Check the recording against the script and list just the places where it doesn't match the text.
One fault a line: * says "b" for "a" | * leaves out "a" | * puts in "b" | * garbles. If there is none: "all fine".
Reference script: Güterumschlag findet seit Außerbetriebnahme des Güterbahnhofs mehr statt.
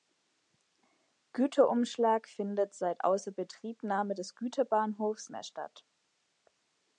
all fine